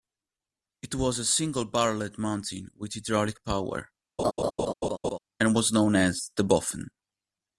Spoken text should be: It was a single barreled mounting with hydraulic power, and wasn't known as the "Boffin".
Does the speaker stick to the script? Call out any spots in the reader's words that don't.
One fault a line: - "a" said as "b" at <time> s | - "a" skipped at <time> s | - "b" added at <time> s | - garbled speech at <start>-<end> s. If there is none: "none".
- "wasn't" said as "was" at 5.5 s